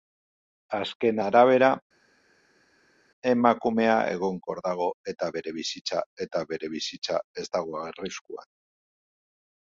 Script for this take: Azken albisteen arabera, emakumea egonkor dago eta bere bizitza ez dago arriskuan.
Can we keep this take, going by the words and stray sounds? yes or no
no